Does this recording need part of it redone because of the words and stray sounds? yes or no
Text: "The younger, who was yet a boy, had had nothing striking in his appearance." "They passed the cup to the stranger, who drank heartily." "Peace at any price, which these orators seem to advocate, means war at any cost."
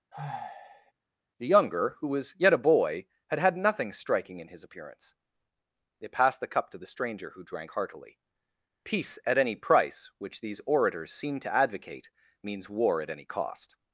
yes